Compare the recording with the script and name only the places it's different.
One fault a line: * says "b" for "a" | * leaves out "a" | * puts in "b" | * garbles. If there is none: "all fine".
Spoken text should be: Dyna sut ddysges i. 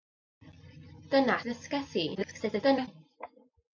* leaves out "sut"
* garbles